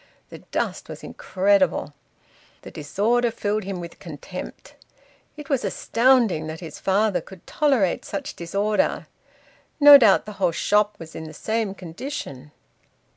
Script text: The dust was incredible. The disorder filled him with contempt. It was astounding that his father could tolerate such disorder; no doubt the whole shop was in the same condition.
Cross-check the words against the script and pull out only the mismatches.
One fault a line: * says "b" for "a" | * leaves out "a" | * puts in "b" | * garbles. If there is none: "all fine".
all fine